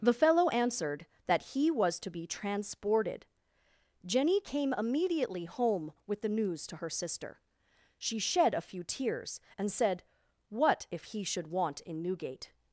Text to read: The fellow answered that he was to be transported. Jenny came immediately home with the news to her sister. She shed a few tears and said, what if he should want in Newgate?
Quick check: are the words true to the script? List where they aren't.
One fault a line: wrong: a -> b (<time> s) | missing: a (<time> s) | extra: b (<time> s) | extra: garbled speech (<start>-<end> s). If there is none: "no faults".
no faults